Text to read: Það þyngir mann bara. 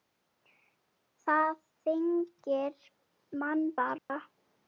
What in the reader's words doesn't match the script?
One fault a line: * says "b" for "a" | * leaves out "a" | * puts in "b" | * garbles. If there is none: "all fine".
all fine